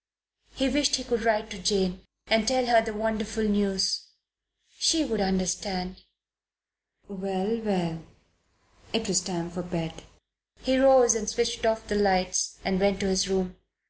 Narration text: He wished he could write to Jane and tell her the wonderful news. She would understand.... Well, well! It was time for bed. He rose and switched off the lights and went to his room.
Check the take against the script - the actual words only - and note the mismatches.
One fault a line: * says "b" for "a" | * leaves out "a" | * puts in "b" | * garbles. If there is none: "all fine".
all fine